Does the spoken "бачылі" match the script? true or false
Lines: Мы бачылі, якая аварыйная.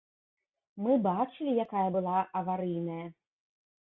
true